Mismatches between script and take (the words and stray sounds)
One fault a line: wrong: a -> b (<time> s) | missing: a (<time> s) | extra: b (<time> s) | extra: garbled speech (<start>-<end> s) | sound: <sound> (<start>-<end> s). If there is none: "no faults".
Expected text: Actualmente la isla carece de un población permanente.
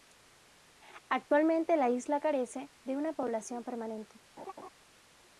wrong: un -> una (3.0 s)
sound: laugh (4.4-4.7 s)